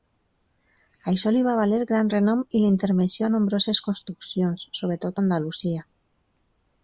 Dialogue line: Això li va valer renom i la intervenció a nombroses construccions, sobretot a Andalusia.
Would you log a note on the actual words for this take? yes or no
yes